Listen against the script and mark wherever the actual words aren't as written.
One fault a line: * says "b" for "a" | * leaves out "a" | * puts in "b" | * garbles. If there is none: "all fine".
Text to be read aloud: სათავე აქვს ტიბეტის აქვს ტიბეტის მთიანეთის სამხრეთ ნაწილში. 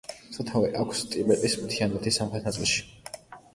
* leaves out "აქვს ტიბეტის"